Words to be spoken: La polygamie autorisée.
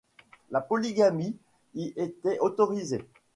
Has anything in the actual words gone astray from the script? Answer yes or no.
yes